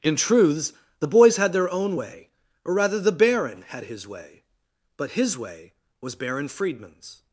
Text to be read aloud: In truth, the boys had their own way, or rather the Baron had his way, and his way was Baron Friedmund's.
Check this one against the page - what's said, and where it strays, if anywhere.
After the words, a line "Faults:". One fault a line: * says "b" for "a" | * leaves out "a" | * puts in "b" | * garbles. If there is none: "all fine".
In truths, the boys had their own way, or rather the Baron had his way, but his way was Baron Friedmund's.
Faults:
* says "truths" for "truth"
* says "but" for "and"